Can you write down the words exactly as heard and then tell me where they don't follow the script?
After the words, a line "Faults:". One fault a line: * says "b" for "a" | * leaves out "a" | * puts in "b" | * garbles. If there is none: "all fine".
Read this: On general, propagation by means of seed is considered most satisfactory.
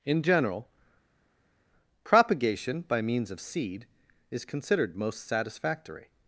In general, propagation by means of seed is considered most satisfactory.
Faults:
* says "In" for "On"